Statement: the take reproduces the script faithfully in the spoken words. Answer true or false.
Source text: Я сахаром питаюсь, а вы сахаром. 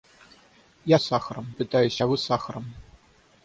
true